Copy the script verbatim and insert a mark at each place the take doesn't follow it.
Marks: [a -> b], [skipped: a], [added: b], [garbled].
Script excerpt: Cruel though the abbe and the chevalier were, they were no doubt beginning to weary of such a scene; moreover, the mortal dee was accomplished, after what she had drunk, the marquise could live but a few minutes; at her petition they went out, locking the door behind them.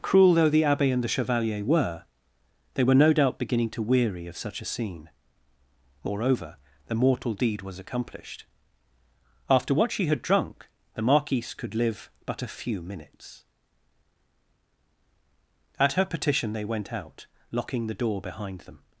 Cruel though the abbe and the chevalier were, they were no doubt beginning to weary of such a scene; moreover, the mortal [dee -> deed] was accomplished, after what she had drunk, the marquise could live but a few minutes; at her petition they went out, locking the door behind them.